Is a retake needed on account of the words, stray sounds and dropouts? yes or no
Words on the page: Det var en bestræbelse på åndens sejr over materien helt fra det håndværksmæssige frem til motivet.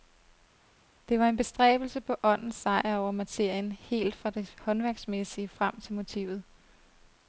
no